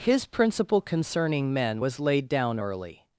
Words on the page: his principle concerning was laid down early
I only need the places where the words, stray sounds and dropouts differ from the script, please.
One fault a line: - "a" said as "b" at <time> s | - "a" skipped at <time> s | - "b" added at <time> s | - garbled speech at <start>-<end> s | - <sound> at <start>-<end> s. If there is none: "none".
- "men" added at 1.5 s